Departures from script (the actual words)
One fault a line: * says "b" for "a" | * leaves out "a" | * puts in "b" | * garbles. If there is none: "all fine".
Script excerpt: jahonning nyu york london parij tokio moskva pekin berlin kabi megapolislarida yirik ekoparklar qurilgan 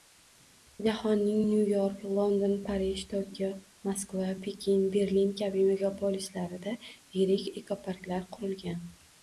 all fine